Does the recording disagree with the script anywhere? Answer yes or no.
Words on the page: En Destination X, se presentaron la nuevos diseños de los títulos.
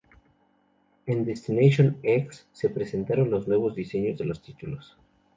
yes